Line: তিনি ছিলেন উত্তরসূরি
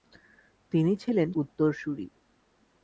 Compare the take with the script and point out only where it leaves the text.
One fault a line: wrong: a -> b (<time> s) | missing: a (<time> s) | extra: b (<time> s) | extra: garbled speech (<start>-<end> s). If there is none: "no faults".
no faults